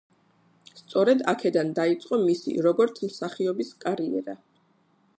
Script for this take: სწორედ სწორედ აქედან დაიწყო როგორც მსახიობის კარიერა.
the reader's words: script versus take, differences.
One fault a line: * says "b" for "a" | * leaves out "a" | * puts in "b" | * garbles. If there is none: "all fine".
* leaves out "სწორედ"
* puts in "მისი"